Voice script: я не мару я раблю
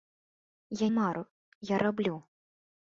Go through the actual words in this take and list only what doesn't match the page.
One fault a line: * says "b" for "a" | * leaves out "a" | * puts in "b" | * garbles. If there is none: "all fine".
* leaves out "не"